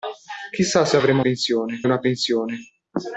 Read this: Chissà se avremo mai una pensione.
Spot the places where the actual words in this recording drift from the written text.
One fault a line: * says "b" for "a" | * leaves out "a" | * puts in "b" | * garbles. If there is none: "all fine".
* says "pensione" for "mai"